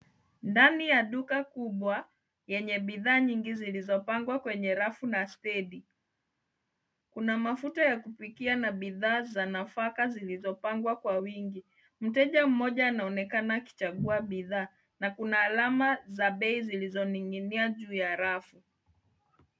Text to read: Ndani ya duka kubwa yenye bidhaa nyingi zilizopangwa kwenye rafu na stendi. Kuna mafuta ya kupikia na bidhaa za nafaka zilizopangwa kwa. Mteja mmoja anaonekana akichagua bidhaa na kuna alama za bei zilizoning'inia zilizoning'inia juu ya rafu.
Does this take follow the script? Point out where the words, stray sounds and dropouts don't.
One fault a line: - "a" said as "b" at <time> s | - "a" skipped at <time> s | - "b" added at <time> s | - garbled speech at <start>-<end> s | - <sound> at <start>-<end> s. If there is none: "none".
- "wingi" added at 11.1 s
- "zilizoning'inia" skipped at 17.7 s